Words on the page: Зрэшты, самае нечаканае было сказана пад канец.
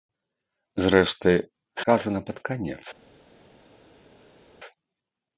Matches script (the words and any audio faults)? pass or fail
fail